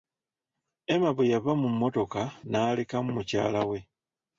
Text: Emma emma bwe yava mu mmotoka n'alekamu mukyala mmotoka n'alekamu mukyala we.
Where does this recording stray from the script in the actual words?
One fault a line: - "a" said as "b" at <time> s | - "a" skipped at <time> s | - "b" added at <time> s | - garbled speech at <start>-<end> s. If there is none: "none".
- "emma" skipped at 1.1 s
- "mmotoka n'alekamu mukyala" skipped at 3.6 s